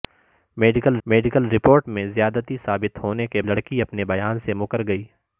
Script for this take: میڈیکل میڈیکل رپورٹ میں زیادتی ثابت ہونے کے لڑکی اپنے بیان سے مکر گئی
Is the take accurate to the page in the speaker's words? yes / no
yes